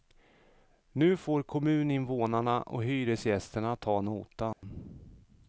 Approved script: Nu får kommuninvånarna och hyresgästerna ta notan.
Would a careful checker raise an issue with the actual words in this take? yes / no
no